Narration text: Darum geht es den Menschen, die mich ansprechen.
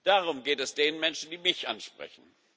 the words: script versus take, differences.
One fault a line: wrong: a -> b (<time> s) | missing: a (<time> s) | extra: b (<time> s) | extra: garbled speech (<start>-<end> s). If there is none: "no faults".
no faults